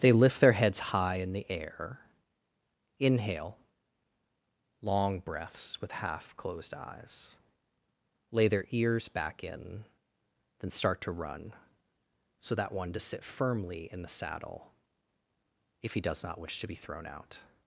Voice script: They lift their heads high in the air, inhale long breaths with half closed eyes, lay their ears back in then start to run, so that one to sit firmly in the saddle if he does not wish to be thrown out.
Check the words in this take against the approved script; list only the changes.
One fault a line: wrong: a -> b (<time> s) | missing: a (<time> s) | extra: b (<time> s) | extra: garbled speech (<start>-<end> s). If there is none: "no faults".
no faults